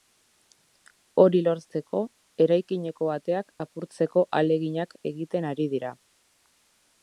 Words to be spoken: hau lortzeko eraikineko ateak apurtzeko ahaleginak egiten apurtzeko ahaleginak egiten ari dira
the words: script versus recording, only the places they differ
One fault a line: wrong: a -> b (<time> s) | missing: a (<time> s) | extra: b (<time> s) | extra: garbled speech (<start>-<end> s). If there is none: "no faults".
wrong: hau -> hori (1.2 s)
missing: apurtzeko ahaleginak egiten (5.5 s)